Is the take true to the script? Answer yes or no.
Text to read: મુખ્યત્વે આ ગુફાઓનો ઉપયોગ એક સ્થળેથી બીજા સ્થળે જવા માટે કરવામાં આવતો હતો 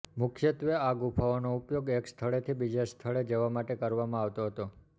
yes